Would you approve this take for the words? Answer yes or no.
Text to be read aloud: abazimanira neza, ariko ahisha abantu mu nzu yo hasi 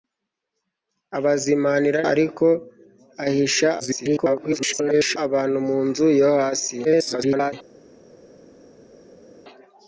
no